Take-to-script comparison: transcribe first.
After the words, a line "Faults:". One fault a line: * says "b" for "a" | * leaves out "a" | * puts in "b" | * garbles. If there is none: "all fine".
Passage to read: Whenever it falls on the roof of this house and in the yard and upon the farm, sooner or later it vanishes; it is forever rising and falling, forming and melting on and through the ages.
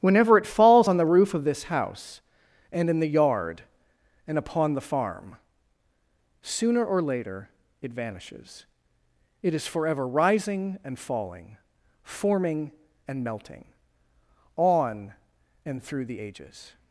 Whenever it falls on the roof of this house and in the yard and upon the farm, sooner or later it vanishes; it is forever rising and falling, forming and melting on and through the ages.
Faults:
all fine